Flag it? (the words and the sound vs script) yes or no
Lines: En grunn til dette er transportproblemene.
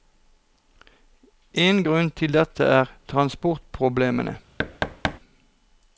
yes